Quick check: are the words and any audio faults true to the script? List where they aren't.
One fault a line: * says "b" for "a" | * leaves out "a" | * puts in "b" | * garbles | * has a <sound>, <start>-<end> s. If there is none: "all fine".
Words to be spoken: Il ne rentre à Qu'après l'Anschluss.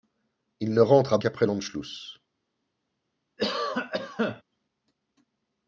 * has a cough, 3.4-4.4 s